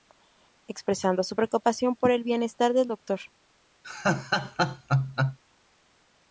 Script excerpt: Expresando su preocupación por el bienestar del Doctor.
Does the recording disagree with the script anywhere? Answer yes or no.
no